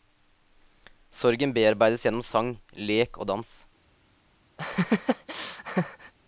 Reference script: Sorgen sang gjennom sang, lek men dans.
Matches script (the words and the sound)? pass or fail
fail